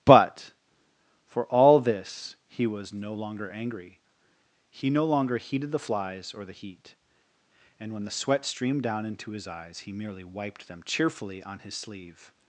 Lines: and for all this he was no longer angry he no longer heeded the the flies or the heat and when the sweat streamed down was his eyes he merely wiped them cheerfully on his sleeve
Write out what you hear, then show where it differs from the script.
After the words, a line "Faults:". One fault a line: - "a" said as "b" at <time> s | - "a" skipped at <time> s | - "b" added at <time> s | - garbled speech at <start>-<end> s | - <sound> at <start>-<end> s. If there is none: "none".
but for all this he was no longer angry he no longer heeded the flies or the heat and when the sweat streamed down into his eyes he merely wiped them cheerfully on his sleeve
Faults:
- "and" said as "but" at 0.1 s
- "the" skipped at 5.8 s
- "was" said as "into" at 9.1 s